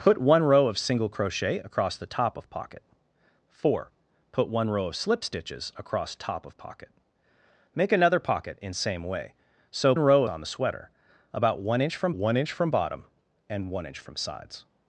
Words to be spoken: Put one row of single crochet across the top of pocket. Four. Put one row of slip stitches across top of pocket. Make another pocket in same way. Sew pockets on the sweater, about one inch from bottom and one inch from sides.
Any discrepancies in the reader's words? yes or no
yes